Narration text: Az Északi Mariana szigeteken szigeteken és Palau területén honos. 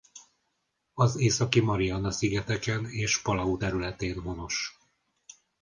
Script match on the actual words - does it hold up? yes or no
no